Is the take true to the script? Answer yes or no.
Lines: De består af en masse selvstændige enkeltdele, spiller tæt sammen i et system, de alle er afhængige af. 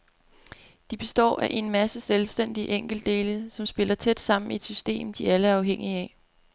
no